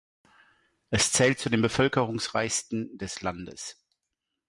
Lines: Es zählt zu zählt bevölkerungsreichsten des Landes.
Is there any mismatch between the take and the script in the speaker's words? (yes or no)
yes